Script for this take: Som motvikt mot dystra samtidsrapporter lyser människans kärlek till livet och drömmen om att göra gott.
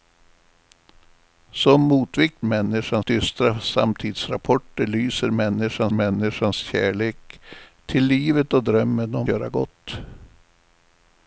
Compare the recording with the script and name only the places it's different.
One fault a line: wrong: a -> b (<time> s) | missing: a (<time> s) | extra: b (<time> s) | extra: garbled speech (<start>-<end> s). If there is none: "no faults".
wrong: mot -> människans (2.4 s)
extra: människans (5.9 s)
missing: att (9.3 s)